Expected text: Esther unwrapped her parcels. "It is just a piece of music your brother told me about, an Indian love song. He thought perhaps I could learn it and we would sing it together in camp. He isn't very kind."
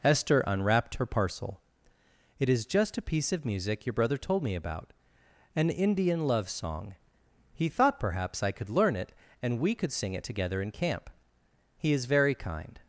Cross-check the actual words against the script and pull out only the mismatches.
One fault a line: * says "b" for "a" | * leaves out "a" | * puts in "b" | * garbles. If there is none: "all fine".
* says "parcel" for "parcels"
* says "could" for "would"
* says "is" for "isn't"